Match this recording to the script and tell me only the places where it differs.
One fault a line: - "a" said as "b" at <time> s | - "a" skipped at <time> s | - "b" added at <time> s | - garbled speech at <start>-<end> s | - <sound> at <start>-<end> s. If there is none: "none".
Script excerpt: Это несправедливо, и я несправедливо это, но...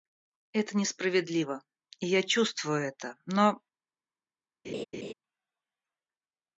- "несправедливо" said as "чувствую" at 2.2 s
- laugh at 4.6-5.1 s